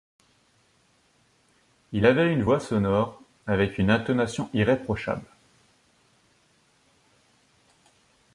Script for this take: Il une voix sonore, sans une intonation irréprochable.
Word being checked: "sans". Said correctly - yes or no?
no